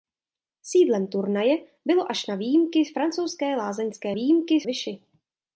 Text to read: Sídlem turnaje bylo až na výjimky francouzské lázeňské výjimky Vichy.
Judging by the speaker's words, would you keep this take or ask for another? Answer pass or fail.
pass